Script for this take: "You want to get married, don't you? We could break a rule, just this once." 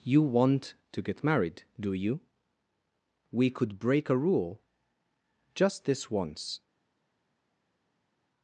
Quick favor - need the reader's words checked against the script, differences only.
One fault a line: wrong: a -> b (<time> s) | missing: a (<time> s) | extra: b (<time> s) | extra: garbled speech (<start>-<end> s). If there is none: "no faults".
wrong: don't -> do (1.8 s)